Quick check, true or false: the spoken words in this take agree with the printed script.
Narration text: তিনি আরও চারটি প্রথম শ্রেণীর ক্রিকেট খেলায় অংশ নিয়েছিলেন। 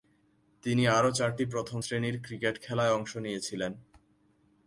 true